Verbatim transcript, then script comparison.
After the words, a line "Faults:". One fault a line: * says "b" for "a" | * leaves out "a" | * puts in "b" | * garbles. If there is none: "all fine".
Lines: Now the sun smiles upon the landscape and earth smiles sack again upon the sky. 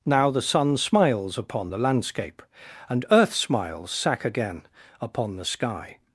Now the sun smiles upon the landscape and earth smiles sack again upon the sky.
Faults:
all fine